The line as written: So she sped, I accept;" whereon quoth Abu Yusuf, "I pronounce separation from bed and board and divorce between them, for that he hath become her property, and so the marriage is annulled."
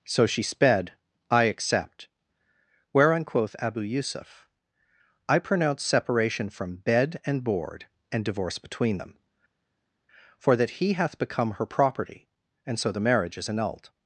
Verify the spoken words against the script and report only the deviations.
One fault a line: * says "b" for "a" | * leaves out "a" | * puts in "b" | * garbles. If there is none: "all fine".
all fine